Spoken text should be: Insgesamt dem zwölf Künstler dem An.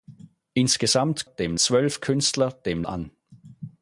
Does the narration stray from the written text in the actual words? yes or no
no